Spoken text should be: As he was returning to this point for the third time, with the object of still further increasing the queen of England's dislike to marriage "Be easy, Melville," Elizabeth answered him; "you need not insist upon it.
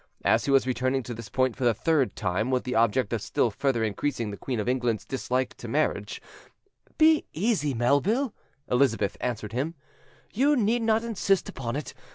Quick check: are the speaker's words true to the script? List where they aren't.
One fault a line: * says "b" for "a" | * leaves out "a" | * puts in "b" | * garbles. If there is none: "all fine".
all fine